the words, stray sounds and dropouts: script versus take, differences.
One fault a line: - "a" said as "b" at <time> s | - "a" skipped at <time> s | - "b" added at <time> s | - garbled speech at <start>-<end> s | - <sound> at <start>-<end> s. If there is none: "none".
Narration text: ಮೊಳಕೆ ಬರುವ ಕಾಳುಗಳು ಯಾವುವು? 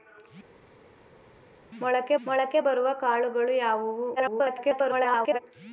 - "ಮೊಳಕೆ" added at 2.3 s
- garbled speech at 4.2-5.4 s